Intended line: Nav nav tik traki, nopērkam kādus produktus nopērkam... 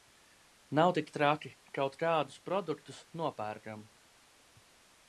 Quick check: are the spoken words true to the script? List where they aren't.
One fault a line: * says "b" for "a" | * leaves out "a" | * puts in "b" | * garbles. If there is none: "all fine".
* leaves out "nav"
* says "kaut" for "nopērkam"